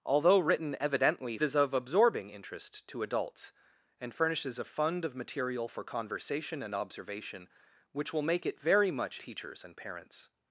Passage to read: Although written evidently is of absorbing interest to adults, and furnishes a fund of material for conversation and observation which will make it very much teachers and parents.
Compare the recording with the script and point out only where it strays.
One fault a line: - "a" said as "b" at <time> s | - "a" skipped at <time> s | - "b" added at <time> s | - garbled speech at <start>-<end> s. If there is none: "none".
none